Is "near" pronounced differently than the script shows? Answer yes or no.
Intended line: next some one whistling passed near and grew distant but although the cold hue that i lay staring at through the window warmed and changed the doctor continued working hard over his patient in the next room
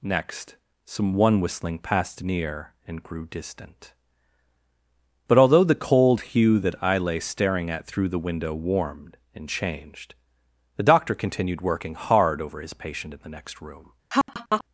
no